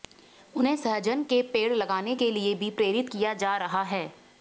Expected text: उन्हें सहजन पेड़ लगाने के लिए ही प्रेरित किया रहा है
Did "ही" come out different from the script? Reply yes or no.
yes